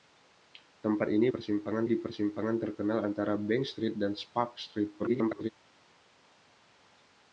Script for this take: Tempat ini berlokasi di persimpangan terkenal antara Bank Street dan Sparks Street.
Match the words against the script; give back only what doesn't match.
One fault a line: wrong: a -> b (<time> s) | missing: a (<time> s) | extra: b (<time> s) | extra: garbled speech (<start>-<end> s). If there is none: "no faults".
wrong: berlokasi -> persimpangan (1.3 s)
extra: garbled speech (5.0-5.5 s)